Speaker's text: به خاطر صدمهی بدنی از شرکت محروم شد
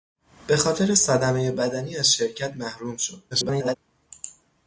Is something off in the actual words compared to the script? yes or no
yes